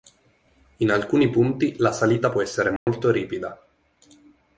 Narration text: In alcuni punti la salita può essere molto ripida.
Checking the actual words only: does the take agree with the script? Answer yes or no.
yes